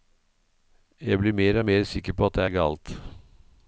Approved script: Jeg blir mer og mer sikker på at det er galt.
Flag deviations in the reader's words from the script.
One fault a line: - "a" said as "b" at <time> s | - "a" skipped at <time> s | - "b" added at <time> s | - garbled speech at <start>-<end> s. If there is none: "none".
none